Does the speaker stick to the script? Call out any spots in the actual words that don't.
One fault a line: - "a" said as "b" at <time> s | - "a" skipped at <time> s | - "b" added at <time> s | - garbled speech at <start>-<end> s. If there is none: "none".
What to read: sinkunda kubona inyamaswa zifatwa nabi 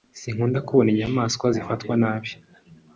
none